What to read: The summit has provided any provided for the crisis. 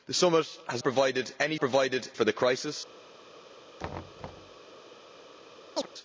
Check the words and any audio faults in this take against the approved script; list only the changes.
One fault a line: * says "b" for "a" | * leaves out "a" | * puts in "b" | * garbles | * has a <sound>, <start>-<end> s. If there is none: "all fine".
* has a thud, 3.8-4.6 s
* has a chirp, 5.8-5.9 s